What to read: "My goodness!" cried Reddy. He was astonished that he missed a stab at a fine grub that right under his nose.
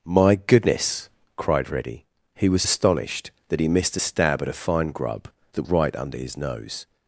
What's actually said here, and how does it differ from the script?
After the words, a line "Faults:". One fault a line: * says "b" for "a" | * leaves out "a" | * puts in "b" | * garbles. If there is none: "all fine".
"My goodness!" cried Reddy. He was astonished that he missed a stab at a fine grub that right under his nose.
Faults:
all fine